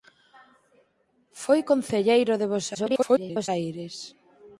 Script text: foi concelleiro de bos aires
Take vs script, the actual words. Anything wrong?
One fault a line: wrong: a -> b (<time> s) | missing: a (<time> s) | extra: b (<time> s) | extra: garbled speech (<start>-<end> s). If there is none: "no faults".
extra: garbled speech (2.7-3.5 s)